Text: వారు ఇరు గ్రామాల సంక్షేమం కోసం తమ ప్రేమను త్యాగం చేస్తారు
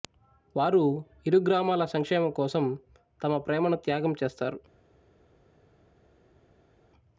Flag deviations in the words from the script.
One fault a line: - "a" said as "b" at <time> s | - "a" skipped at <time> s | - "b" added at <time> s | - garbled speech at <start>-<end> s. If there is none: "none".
none